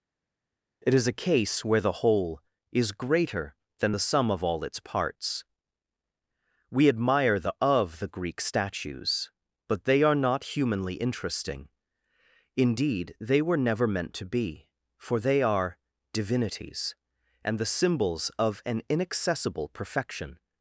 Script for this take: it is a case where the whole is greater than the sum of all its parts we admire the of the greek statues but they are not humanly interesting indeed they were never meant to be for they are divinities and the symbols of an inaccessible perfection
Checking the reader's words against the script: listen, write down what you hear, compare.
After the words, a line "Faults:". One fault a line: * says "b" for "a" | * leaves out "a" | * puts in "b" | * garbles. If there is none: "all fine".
it is a case where the whole is greater than the sum of all its parts we admire the of the greek statues but they are not humanly interesting indeed they were never meant to be for they are divinities and the symbols of an inaccessible perfection
Faults:
all fine